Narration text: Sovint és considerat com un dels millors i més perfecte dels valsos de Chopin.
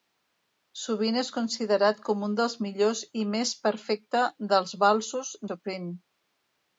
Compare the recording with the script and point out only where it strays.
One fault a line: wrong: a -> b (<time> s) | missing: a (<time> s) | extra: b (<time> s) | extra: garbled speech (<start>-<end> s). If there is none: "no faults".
missing: de (5.4 s)